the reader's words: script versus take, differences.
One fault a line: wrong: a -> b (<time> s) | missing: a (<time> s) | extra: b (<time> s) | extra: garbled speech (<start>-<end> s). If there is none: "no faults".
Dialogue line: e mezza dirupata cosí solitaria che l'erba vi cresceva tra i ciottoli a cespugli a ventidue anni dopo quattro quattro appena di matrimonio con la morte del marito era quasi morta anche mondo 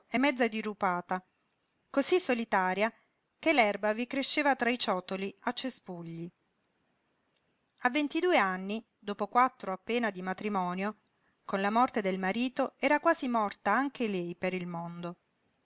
missing: quattro (9.7 s)
extra: lei per il (14.1 s)